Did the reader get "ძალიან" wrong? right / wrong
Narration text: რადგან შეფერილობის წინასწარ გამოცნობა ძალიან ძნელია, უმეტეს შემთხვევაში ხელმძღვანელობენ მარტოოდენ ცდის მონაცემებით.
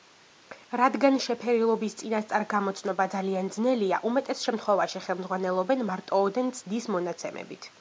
right